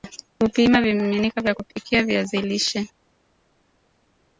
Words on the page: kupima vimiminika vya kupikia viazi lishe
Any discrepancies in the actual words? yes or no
no